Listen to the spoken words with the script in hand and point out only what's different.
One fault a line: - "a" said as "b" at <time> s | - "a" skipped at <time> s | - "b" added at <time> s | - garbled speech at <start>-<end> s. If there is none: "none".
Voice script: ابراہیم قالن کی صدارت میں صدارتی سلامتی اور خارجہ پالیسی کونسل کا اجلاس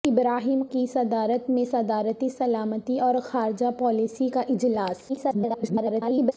- "قالن" skipped at 0.6 s
- "کونسل" skipped at 4.3 s
- garbled speech at 5.1-6.3 s